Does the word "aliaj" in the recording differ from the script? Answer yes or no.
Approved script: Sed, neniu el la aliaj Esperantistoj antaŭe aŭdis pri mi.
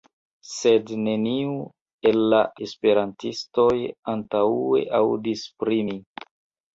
yes